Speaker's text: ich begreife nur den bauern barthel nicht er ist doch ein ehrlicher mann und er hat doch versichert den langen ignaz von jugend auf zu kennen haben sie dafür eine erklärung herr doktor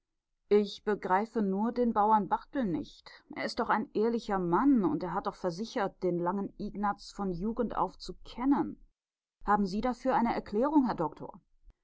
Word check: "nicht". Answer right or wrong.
right